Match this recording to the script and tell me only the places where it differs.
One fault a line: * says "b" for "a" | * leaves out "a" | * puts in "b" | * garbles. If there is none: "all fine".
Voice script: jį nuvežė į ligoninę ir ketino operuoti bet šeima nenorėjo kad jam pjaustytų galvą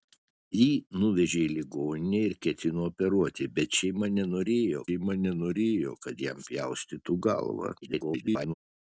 * puts in "šeima nenorėjo"
* garbles